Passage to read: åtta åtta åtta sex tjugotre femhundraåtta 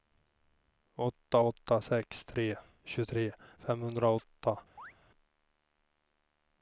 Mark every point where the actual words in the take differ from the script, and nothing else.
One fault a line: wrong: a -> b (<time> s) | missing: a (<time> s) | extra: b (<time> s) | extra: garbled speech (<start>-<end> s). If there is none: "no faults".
wrong: åtta sex -> sex tre (1.8 s)